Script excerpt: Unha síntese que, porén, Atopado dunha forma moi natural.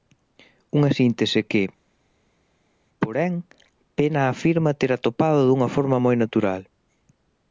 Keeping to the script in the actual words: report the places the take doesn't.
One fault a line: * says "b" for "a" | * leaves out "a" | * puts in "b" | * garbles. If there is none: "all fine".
* puts in "Pena afirma ter"